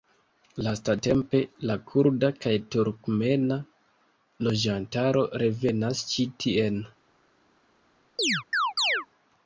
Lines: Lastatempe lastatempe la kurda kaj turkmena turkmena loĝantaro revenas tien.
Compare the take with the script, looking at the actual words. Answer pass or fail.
fail